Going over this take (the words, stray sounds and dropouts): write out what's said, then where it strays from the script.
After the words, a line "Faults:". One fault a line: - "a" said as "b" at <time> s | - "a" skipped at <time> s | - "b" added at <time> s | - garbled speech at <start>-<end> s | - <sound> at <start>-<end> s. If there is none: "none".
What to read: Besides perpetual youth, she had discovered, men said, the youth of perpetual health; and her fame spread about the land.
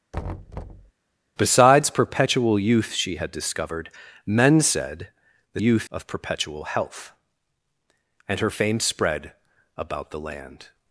Besides perpetual youth, she had discovered, men said, the youth of perpetual health; and her fame spread about the land.
Faults:
- thud at 0.1-0.9 s